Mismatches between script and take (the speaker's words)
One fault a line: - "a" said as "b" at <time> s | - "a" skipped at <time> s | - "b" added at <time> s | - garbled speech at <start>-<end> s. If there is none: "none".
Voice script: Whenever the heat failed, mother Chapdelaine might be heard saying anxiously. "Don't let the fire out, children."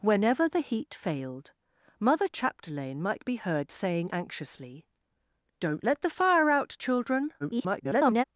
- garbled speech at 7.4-8.2 s